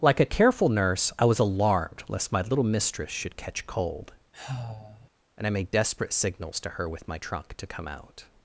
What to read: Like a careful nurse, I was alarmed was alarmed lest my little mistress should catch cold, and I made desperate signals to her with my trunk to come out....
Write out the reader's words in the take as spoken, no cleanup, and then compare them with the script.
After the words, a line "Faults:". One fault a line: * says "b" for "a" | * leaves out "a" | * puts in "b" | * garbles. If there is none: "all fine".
Like a careful nurse, I was alarmed lest my little mistress should catch cold, and I made desperate signals to her with my trunk to come out....
Faults:
* leaves out "was alarmed"